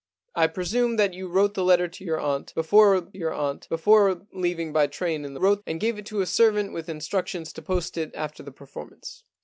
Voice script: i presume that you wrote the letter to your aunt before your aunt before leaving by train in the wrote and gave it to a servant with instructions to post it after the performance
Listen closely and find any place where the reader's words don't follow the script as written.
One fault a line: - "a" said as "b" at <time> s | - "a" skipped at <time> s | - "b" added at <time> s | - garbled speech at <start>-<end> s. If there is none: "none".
none